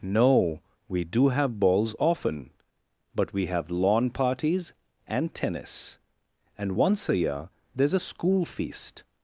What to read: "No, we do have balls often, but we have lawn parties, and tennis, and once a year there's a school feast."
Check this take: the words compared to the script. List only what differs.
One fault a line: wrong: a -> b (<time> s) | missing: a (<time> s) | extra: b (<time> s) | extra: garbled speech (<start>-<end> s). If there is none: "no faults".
no faults